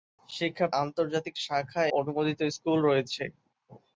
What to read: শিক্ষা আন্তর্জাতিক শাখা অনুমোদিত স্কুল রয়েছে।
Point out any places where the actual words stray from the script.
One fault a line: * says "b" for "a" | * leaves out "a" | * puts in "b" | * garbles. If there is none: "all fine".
all fine